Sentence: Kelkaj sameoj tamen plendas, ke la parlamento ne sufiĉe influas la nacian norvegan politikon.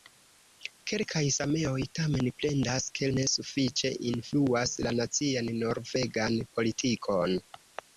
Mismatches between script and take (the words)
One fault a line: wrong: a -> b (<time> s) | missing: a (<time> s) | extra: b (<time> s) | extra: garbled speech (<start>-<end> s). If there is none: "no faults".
missing: la parlamento (3.1 s)